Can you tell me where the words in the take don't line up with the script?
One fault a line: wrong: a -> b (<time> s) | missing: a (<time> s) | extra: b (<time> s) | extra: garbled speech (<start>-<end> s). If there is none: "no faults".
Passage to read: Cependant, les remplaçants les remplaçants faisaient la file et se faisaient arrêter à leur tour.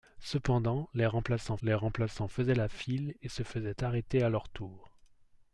no faults